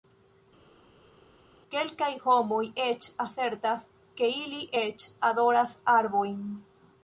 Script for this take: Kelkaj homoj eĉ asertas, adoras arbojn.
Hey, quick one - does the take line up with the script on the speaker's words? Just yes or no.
no